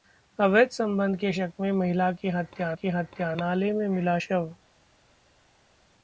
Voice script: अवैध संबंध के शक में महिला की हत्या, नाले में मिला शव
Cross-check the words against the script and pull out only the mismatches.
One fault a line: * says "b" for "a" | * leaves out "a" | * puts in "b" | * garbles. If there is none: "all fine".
* puts in "की हत्या"